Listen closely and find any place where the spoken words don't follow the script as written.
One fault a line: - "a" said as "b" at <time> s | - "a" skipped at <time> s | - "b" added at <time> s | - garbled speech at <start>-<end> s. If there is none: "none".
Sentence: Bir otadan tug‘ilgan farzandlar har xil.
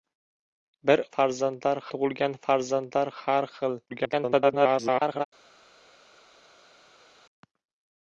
- "otadan" said as "farzandlar" at 1.2 s
- garbled speech at 3.9-5.3 s